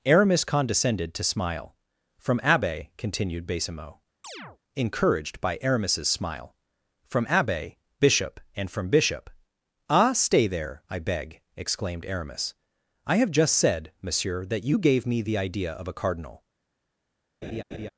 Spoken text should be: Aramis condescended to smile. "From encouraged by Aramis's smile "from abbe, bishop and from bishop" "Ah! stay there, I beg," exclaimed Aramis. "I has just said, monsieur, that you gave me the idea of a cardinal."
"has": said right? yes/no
no